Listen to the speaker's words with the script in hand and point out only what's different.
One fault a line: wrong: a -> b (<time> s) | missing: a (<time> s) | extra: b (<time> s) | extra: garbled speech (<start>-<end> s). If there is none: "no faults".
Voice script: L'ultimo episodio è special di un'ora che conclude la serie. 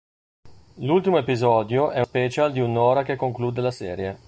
no faults